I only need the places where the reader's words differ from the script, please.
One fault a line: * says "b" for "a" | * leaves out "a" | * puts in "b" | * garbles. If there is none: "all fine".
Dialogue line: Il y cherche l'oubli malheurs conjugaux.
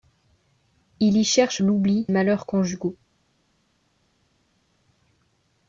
all fine